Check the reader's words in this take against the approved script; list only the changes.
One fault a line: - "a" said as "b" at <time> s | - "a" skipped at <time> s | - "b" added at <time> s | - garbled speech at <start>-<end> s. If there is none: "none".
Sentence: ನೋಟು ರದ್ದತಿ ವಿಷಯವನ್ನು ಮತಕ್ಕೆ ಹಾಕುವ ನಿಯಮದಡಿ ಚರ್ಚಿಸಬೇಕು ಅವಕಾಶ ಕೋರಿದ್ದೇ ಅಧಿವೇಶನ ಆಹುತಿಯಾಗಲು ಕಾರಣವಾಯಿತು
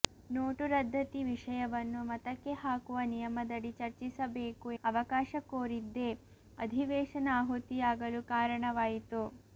none